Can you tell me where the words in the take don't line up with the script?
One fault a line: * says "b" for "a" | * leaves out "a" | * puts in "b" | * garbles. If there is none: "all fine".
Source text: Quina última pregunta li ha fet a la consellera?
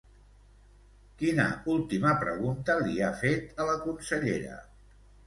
all fine